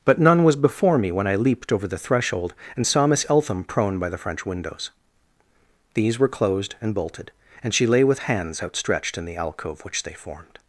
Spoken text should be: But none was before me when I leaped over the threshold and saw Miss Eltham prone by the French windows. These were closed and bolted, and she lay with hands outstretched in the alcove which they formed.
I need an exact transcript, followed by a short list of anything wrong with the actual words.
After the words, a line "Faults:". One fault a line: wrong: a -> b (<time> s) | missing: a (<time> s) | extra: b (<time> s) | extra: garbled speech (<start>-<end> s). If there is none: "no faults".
But none was before me when I leaped over the threshold and saw Miss Eltham prone by the French windows. These were closed and bolted, and she lay with hands outstretched in the alcove which they formed.
Faults:
no faults